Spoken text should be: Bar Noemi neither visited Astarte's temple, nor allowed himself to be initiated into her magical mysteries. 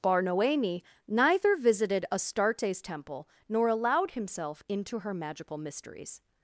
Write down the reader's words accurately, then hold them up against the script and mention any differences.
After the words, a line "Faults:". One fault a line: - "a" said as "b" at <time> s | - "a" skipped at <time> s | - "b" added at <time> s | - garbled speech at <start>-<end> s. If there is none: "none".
Bar Noemi neither visited Astarte's temple, nor allowed himself into her magical mysteries.
Faults:
- "to be initiated" skipped at 4.6 s